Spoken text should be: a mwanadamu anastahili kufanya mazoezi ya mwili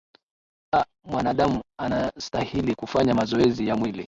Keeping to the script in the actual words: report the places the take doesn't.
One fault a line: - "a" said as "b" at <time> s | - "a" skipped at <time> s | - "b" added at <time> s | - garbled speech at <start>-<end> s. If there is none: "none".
none